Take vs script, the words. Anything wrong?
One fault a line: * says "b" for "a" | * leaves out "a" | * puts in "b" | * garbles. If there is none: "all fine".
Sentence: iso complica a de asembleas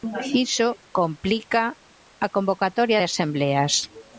* puts in "convocatoria"